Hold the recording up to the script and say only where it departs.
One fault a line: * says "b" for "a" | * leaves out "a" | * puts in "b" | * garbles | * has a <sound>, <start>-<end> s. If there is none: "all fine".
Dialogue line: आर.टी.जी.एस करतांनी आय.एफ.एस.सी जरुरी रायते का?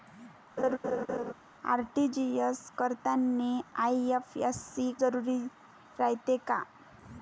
* has a laugh, 0.6-1.3 s